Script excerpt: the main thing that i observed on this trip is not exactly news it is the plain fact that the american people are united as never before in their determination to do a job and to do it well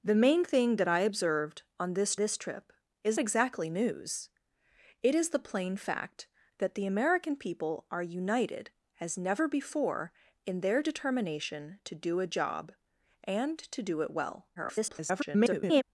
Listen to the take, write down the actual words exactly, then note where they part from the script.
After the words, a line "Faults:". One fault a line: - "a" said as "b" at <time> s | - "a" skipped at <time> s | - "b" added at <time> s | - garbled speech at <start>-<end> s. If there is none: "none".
the main thing that i observed on this this trip is exactly news it is the plain fact that the american people are united as never before in their determination to do a job and to do it well [garbled]
Faults:
- "this" added at 2.2 s
- "not" skipped at 3.2 s
- garbled speech at 14.6-15.8 s